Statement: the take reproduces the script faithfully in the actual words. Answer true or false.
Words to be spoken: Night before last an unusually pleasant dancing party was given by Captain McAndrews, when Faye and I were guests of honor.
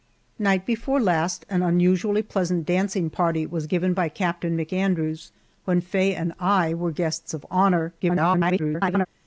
false